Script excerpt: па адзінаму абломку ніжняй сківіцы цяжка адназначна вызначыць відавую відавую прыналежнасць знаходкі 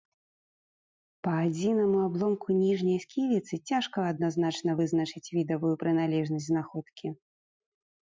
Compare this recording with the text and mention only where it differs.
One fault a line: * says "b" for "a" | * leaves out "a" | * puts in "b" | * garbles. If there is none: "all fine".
* leaves out "відавую"